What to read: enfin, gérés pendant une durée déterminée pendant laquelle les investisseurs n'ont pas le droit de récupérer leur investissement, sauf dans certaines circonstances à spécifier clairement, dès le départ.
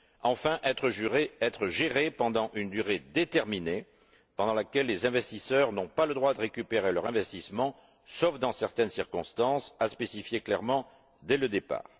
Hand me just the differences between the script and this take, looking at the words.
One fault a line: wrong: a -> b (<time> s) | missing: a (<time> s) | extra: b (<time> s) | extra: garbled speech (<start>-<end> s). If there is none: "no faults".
extra: être (0.6 s)